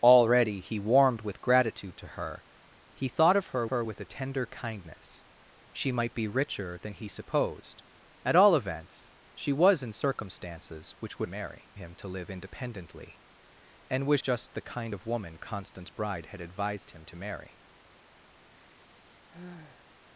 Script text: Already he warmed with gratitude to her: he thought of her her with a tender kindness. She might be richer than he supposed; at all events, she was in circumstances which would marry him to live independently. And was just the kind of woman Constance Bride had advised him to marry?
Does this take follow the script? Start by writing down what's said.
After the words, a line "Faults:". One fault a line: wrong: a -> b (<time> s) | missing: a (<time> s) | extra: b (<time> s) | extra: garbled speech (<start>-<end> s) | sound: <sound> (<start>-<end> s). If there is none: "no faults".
Already he warmed with gratitude to her: he thought of her her with a tender kindness. She might be richer than he supposed; at all events, she was in circumstances which would marry him to live independently. And was just the kind of woman Constance Bride had advised him to marry?
Faults:
sound: sigh (18.5-19.9 s)